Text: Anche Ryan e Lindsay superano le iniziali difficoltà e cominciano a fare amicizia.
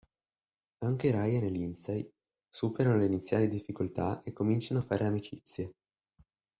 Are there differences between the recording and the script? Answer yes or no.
no